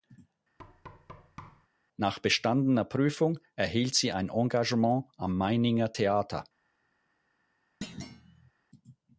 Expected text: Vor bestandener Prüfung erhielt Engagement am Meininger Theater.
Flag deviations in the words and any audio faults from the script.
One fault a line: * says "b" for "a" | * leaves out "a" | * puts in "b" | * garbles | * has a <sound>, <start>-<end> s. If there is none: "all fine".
* has a thud, 0.6-1.7 s
* says "Nach" for "Vor"
* puts in "sie ein"
* has a thud, 7.8-8.5 s